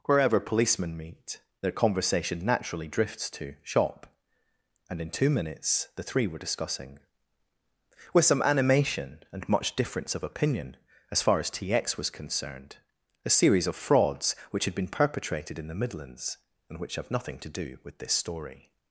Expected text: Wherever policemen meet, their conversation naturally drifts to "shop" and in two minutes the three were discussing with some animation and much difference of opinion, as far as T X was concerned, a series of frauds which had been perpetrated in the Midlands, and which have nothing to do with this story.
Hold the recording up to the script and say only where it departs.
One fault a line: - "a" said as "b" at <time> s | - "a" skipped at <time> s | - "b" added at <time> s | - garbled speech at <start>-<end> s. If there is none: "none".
none